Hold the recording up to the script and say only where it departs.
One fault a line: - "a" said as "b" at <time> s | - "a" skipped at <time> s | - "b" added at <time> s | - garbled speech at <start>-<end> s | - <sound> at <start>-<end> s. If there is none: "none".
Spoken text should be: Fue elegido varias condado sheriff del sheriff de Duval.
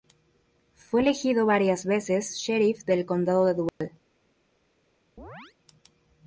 - "condado" said as "veces" at 1.9 s
- "sheriff" said as "condado" at 3.0 s
- dropout at 3.7-3.8 s
- chirp at 5.2-5.6 s